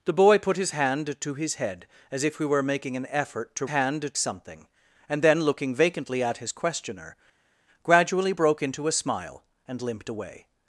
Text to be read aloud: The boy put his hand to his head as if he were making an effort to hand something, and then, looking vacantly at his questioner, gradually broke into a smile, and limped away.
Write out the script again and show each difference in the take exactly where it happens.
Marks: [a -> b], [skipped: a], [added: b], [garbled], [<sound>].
The boy put his hand to his head as if he were making an effort to hand something, and then, looking vacantly at his questioner, gradually broke into a smile, and limped away.